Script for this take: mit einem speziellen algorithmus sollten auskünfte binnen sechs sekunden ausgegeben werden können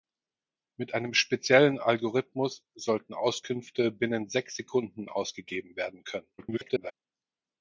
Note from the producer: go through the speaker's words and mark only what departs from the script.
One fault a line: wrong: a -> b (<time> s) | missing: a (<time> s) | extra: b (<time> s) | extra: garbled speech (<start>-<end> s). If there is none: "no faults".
extra: garbled speech (6.4-6.9 s)